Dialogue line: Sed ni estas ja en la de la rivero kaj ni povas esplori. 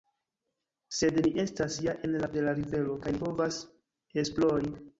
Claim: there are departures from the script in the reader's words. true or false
false